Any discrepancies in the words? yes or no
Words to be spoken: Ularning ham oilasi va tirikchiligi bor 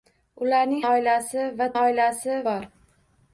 yes